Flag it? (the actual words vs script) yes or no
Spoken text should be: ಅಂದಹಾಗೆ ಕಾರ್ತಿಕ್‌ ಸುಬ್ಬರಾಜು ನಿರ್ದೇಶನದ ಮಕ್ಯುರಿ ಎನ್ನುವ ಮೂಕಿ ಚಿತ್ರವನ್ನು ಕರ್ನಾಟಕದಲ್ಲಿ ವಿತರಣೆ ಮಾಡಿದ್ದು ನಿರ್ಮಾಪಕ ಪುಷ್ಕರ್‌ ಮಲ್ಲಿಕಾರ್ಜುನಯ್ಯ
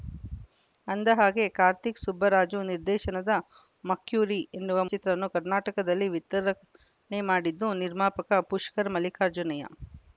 yes